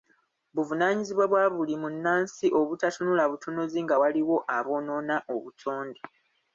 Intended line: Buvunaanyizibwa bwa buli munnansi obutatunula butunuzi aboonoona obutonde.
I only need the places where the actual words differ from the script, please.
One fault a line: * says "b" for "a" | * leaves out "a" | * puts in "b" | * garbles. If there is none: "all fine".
* puts in "nga waliwo"